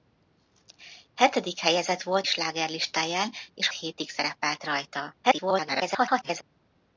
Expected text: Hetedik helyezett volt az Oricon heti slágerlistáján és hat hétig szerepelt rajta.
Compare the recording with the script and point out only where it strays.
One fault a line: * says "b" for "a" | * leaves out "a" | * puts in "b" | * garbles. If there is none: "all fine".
* leaves out "az Oricon heti"
* leaves out "hat"
* garbles